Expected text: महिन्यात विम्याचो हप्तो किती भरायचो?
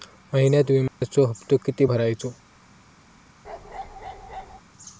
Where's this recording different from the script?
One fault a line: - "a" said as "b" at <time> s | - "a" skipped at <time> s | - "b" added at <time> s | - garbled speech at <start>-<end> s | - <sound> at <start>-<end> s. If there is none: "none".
- dropout at 0.9-1.0 s
- bark at 3.4-4.6 s